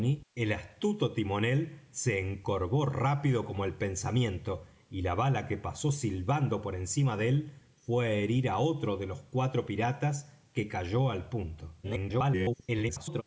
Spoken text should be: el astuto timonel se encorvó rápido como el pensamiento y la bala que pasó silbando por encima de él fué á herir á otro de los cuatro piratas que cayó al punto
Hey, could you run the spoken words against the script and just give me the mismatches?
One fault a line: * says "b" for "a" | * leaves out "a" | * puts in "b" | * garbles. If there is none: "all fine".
* garbles